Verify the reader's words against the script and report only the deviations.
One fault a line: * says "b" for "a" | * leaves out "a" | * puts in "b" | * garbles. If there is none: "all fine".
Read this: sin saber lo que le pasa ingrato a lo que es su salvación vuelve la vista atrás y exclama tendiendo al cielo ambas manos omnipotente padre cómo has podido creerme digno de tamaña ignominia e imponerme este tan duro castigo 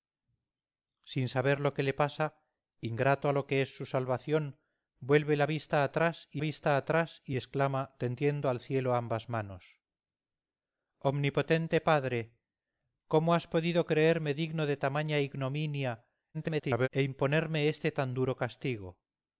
* puts in "vista atrás y"
* garbles